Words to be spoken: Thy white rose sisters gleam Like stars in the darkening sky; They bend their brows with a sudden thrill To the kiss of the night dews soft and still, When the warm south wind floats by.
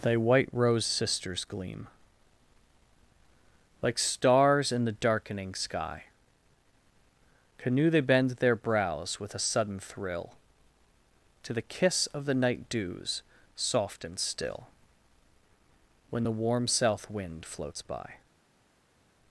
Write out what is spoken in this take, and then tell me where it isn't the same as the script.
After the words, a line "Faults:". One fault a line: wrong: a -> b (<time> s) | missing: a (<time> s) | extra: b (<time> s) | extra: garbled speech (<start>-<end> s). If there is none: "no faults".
Thy white rose sisters gleam Like stars in the darkening sky; canoe They bend their brows with a sudden thrill To the kiss of the night dews soft and still, When the warm south wind floats by.
Faults:
extra: canoe (7.6 s)